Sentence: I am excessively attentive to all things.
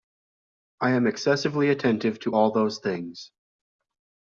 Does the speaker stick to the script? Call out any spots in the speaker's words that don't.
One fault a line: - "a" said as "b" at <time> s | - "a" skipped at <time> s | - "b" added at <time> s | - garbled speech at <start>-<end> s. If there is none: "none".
- "those" added at 2.5 s